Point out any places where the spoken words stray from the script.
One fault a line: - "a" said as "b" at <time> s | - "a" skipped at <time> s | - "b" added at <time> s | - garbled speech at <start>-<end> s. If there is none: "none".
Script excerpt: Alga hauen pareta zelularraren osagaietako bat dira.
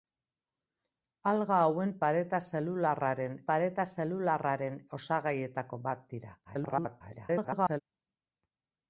- "pareta zelularraren" added at 3.5 s
- garbled speech at 6.4-7.8 s